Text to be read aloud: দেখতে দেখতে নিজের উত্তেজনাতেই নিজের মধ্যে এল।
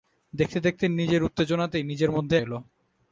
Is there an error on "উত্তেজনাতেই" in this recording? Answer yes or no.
no